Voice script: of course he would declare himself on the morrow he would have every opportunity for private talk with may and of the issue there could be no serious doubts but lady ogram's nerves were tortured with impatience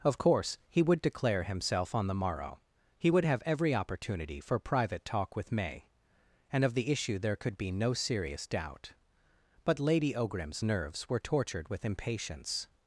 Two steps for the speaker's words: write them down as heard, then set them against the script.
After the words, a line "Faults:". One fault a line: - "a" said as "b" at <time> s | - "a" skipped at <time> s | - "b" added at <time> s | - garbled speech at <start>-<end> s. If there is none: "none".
of course he would declare himself on the morrow he would have every opportunity for private talk with may and of the issue there could be no serious doubt but lady ogram's nerves were tortured with impatience
Faults:
- "doubts" said as "doubt" at 8.5 s